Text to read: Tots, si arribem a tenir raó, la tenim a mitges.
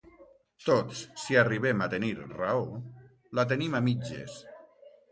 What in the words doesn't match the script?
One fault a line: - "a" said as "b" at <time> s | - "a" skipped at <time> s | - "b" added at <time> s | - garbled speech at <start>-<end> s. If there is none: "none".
none